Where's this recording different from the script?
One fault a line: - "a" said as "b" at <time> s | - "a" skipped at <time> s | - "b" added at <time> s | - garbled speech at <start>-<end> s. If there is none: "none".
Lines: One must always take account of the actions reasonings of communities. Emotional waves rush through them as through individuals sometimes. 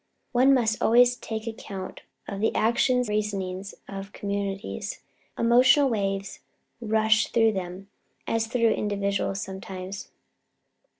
none